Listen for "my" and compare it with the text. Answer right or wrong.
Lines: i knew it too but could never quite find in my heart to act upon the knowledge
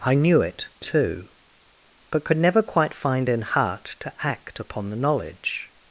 wrong